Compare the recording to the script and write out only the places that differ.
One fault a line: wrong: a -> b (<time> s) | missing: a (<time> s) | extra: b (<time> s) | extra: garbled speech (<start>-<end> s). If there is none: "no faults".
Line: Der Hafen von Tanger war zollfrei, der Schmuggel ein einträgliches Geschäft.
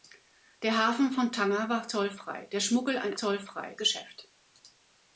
wrong: einträgliches -> zollfrei (3.1 s)